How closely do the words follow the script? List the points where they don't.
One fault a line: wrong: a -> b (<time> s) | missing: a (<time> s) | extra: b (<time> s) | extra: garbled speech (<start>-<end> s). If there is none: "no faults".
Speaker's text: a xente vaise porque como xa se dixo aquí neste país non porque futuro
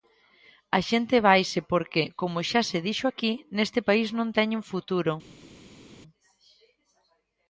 wrong: porque -> teñen (4.4 s)